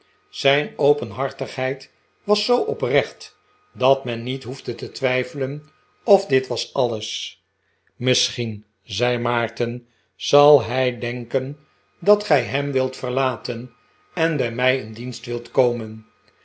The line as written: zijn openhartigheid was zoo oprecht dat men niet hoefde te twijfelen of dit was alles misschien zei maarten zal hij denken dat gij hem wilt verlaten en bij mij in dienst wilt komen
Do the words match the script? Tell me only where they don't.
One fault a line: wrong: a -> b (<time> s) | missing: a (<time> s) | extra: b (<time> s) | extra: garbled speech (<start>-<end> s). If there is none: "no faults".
no faults